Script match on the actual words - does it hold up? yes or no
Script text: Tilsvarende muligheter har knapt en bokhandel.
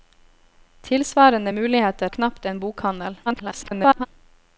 no